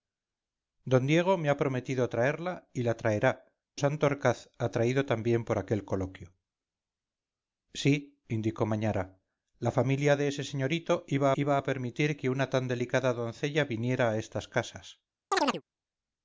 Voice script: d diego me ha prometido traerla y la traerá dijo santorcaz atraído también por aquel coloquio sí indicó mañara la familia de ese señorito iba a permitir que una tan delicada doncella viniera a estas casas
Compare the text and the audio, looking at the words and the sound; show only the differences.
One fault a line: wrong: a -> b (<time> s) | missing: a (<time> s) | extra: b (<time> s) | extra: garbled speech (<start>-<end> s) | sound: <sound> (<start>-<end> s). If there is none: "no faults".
missing: dijo (3.3 s)
extra: iba (11.3 s)
sound: chirp (15.3-15.6 s)